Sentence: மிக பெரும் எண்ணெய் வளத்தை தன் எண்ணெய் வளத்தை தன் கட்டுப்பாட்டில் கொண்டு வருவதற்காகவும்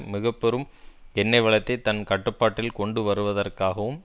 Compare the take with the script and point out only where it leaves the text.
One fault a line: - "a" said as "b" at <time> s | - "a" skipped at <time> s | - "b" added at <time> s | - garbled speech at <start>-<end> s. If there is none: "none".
- "எண்ணெய் வளத்தை தன்" skipped at 2.0 s